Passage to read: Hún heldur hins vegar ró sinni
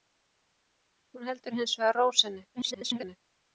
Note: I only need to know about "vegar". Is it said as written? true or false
true